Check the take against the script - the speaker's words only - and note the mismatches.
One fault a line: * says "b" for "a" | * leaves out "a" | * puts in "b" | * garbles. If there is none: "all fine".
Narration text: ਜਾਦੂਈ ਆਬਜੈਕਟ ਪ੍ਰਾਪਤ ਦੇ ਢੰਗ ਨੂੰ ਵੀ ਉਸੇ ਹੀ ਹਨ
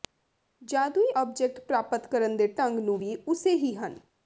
* puts in "ਕਰਨ"